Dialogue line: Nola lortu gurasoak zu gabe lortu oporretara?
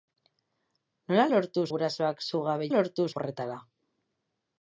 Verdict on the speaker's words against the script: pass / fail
pass